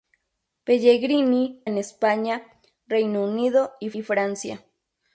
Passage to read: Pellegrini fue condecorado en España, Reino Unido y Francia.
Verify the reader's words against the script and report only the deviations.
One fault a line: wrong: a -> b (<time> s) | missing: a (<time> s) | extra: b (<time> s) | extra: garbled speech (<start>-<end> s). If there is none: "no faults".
missing: fue condecorado (1.6 s)
extra: y (3.9 s)